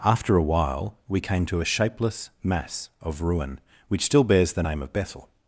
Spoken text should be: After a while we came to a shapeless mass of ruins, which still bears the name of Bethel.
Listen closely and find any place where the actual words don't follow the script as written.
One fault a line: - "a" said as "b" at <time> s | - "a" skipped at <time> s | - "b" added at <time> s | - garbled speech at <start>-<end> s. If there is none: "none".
- "ruins" said as "ruin" at 3.2 s